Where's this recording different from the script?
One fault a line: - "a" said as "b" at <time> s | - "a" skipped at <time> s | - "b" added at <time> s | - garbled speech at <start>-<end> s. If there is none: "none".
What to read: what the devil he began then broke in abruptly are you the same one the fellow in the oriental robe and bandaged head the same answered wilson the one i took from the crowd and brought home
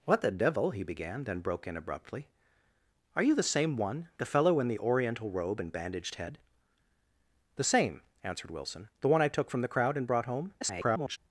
- garbled speech at 10.6-11.2 s